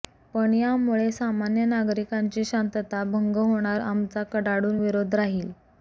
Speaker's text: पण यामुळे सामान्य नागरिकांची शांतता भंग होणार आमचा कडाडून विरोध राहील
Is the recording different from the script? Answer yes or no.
no